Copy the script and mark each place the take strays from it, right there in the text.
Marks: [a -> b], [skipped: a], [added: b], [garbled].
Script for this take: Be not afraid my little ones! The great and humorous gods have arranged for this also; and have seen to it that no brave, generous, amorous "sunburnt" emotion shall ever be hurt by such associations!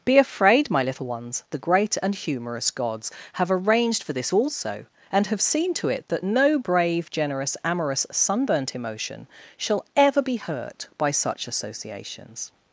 Be [skipped: not] afraid my little ones! The great and humorous gods have arranged for this also; and have seen to it that no brave, generous, amorous "sunburnt" emotion shall ever be hurt by such associations!